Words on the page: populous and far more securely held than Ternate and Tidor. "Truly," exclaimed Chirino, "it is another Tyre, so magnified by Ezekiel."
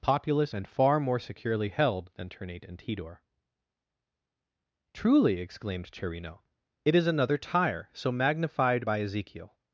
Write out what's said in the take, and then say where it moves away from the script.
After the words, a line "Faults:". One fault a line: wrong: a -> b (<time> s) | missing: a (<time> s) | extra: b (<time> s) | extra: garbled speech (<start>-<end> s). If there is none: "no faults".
populous and far more securely held than Ternate and Tidor. "Truly," exclaimed Chirino, "it is another Tyre, so magnified by Ezekiel."
Faults:
no faults